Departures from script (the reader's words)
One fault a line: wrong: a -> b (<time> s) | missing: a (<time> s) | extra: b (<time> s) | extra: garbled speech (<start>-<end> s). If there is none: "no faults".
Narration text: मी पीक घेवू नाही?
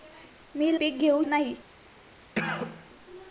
no faults